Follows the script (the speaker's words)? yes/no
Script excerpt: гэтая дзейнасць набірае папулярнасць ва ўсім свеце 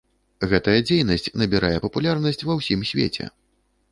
yes